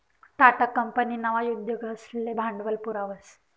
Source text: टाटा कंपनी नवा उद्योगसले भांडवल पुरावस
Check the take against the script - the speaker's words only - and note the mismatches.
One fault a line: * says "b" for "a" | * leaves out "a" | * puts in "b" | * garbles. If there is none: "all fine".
all fine